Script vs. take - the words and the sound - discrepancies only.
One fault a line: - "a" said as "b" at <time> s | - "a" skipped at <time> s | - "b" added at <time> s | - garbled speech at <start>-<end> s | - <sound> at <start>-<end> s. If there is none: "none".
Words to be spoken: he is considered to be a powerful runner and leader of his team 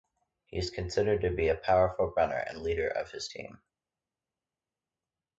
none